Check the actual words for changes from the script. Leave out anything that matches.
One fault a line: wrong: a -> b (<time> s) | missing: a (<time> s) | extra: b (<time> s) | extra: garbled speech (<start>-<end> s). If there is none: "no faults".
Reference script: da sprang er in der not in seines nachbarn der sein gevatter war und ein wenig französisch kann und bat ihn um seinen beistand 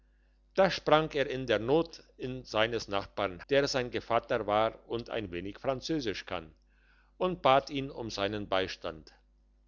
no faults